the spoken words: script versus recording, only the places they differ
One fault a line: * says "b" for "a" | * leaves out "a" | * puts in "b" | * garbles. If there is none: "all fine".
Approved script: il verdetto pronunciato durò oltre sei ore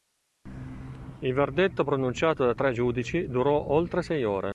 * puts in "da tre giudici"